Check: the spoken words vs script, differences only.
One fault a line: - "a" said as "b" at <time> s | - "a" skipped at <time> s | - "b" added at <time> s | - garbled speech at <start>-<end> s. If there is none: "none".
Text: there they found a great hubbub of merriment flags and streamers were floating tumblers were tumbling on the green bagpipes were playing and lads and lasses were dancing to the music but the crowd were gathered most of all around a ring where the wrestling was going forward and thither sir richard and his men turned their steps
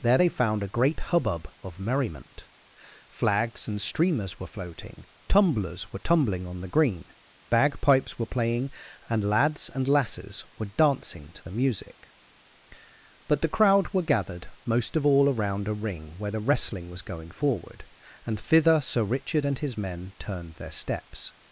none